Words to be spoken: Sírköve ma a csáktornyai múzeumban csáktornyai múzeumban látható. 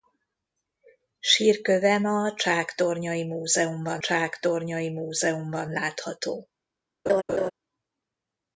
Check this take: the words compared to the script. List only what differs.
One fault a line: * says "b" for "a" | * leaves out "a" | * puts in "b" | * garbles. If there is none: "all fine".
all fine